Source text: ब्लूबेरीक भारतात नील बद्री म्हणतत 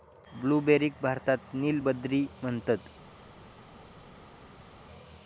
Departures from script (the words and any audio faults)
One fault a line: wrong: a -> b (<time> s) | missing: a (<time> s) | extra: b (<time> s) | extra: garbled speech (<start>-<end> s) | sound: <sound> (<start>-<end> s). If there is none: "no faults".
no faults